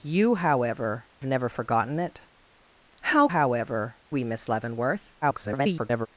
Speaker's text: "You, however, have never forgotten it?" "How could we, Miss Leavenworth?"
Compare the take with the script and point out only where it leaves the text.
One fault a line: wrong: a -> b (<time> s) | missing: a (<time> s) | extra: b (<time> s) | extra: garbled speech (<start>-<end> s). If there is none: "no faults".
missing: have (1.1 s)
wrong: could -> however (3.3 s)
extra: garbled speech (5.2-6.1 s)